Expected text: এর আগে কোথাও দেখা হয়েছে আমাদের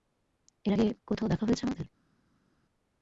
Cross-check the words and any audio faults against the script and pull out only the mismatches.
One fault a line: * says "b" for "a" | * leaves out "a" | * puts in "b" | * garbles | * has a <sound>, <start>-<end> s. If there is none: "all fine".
all fine